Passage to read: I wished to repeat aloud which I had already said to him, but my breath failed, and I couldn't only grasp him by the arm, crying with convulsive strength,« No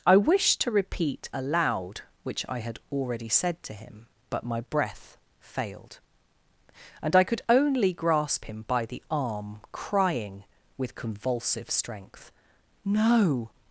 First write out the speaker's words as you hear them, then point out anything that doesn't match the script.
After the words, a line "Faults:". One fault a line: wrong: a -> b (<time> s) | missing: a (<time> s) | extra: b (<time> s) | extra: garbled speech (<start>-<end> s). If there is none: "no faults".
I wished to repeat aloud which I had already said to him, but my breath failed, and I could only grasp him by the arm, crying with convulsive strength,« No
Faults:
wrong: couldn't -> could (7.2 s)